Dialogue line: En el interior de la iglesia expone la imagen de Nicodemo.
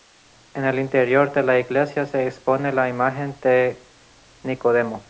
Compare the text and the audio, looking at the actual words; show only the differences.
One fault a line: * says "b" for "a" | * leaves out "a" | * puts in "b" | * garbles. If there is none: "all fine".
* puts in "se"